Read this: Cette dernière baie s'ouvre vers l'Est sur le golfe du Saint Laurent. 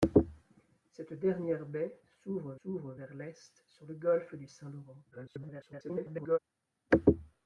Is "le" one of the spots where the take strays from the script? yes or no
no